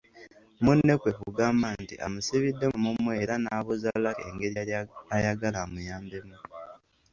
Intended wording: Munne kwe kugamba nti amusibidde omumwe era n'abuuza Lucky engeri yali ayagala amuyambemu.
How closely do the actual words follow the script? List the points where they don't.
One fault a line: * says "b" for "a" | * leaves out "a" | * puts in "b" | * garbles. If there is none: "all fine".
all fine